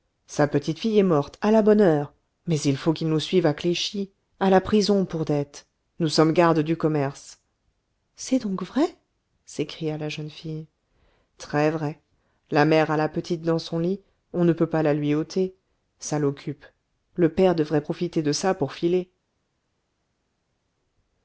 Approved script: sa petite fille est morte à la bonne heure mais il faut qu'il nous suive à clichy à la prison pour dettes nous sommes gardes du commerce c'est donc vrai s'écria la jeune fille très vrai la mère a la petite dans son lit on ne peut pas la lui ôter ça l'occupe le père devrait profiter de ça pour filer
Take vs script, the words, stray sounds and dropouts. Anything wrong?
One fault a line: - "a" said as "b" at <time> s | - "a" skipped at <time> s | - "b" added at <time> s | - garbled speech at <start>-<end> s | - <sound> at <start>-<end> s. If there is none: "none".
none